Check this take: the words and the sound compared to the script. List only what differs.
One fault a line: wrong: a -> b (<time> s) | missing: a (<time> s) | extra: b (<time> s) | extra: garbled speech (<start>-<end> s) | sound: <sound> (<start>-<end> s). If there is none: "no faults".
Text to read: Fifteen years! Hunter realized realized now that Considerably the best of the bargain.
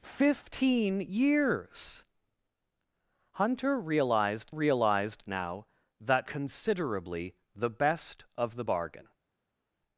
no faults